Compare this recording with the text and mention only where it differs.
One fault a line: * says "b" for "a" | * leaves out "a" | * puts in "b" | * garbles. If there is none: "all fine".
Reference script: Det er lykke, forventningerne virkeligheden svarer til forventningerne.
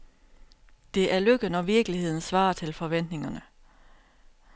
* says "når" for "forventningerne"